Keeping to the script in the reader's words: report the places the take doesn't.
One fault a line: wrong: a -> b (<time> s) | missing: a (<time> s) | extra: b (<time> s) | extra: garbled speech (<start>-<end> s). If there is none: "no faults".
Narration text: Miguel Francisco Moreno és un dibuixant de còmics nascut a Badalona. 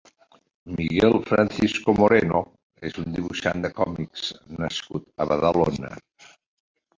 no faults